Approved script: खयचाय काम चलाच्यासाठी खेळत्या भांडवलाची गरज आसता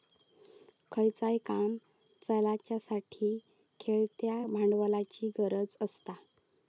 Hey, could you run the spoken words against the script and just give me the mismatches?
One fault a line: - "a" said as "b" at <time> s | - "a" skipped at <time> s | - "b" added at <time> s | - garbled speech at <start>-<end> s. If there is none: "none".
none